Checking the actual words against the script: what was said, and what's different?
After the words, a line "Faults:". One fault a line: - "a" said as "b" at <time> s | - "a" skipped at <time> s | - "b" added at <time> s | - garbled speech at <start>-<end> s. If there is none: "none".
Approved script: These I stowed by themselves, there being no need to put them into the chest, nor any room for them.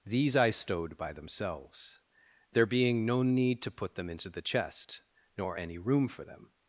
These I stowed by themselves, there being no need to put them into the chest, nor any room for them.
Faults:
none